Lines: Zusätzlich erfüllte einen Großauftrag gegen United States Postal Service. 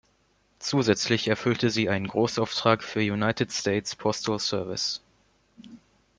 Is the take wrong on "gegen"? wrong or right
wrong